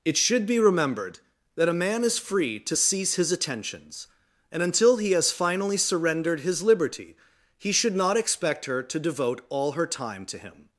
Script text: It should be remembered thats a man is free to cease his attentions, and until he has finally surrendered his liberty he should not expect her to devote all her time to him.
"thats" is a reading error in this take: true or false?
true